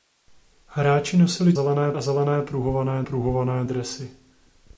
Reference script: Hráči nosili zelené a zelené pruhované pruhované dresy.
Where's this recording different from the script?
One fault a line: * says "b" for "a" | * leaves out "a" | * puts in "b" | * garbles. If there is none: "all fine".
all fine